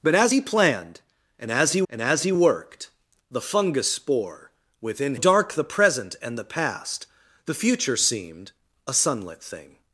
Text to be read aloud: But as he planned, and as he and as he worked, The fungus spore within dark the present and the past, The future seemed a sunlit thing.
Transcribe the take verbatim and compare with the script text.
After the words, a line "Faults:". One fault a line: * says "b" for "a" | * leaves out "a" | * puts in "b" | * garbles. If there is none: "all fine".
But as he planned, and as he and as he worked, The fungus spore within dark the present and the past, The future seemed a sunlit thing.
Faults:
all fine